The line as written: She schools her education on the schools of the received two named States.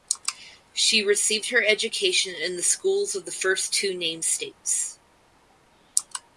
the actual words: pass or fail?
fail